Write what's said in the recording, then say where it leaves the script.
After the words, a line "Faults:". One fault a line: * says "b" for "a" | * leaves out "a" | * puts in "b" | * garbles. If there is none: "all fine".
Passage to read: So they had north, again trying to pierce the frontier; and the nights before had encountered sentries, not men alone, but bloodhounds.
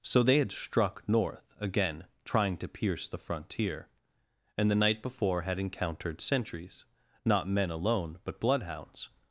So they had struck north, again trying to pierce the frontier; and the night before had encountered sentries, not men alone, but bloodhounds.
Faults:
* puts in "struck"
* says "night" for "nights"